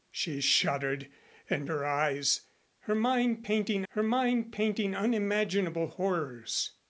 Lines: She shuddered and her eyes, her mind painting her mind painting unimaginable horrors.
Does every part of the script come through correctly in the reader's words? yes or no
yes